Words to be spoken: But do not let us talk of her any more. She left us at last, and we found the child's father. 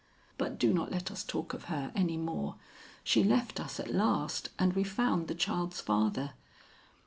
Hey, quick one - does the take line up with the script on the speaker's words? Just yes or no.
yes